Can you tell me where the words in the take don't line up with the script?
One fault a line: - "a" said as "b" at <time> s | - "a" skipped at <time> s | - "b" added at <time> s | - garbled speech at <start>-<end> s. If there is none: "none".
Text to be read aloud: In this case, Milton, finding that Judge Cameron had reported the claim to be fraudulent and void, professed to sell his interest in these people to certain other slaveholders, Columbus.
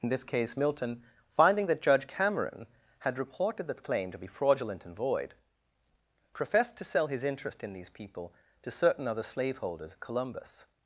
none